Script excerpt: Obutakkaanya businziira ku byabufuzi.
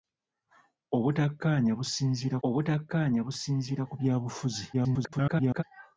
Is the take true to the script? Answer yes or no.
no